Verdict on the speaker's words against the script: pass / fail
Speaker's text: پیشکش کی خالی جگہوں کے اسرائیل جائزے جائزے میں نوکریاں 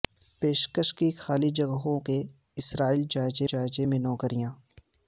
pass